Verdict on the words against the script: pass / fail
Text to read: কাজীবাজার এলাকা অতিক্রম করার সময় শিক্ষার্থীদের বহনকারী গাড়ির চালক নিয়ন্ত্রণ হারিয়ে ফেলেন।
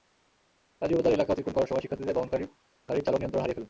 pass